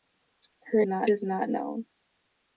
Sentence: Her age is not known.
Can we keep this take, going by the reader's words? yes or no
no